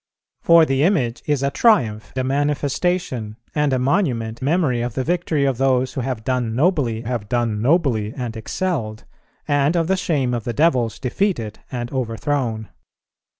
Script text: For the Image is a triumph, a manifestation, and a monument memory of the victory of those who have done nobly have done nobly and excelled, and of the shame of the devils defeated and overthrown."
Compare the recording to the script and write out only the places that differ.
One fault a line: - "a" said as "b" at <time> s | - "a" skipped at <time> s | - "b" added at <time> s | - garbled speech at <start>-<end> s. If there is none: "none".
none